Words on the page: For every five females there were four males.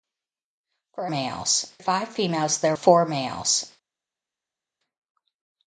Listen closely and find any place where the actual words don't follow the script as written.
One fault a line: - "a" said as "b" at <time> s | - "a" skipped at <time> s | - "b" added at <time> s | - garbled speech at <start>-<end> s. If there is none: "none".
- "every" said as "males" at 1.1 s
- "were" skipped at 2.7 s